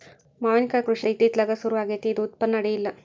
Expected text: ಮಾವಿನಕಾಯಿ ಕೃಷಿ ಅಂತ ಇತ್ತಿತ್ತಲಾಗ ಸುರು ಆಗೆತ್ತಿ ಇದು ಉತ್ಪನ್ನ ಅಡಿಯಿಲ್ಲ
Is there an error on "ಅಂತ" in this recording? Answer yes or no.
yes